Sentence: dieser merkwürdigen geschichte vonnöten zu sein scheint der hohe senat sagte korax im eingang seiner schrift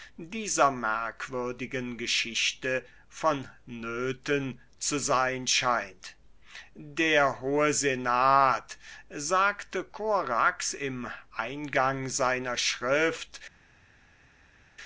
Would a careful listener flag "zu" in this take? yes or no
no